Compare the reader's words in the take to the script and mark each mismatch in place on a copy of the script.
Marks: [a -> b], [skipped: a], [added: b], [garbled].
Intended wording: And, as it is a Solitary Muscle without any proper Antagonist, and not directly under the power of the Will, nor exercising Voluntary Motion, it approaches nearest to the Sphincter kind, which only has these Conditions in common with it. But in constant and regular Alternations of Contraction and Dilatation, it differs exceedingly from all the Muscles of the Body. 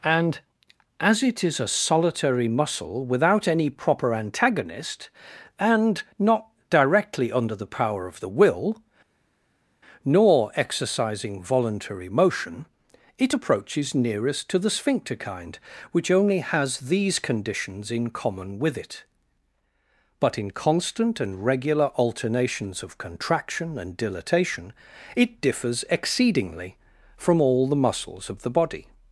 And, as it is a Solitary Muscle without any proper Antagonist, and not directly under the power of the Will, nor exercising Voluntary Motion, it approaches nearest to the Sphincter kind, which only has these Conditions in common with it. But in constant and regular Alternations of Contraction and Dilatation, it differs exceedingly from all the Muscles of the Body.